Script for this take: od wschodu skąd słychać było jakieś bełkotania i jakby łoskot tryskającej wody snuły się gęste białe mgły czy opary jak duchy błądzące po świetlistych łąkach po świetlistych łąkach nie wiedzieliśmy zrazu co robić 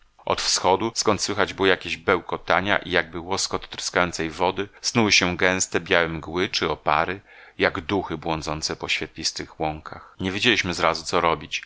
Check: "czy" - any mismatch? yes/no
no